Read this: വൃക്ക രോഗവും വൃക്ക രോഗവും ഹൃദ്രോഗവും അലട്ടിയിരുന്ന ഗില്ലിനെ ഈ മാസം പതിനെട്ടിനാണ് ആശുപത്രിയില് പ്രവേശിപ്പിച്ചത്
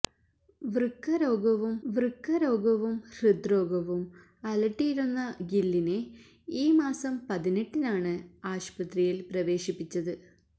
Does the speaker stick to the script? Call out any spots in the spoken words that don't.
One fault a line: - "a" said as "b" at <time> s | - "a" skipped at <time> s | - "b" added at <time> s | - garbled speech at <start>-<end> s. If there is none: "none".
none